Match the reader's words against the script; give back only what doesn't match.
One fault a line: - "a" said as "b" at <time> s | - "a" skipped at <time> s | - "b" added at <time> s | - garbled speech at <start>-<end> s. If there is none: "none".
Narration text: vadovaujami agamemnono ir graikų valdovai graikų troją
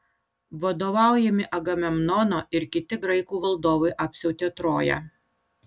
- "kiti" added at 2.8 s
- "graikų" said as "apsiautė" at 4.1 s